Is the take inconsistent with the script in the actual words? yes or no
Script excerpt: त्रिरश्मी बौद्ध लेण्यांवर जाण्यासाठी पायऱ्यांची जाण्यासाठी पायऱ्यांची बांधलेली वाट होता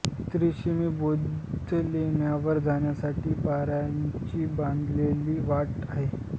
yes